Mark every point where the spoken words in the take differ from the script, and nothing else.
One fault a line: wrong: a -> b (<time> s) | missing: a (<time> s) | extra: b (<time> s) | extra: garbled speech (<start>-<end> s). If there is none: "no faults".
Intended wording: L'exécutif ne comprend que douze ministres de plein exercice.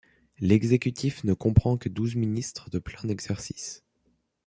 no faults